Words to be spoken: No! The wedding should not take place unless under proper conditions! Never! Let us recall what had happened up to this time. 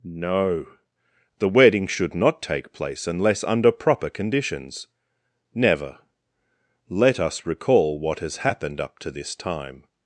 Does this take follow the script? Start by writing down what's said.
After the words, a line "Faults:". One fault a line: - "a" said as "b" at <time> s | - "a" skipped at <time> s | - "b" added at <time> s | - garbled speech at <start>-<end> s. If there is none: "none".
No! The wedding should not take place unless under proper conditions! Never! Let us recall what has happened up to this time.
Faults:
- "had" said as "has" at 8.2 s